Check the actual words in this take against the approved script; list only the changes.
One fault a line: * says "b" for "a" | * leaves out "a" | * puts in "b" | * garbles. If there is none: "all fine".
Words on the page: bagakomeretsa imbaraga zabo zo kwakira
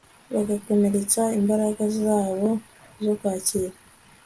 all fine